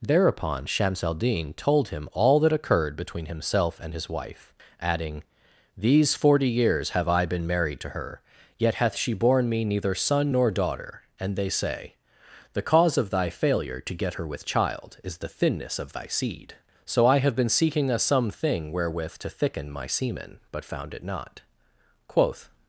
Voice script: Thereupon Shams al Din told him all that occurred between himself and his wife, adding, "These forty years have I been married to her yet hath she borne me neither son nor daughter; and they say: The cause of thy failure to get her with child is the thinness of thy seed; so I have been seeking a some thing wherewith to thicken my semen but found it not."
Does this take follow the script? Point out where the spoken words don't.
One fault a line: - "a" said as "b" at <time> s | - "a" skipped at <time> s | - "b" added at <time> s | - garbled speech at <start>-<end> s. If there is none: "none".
- "Quoth" added at 22.1 s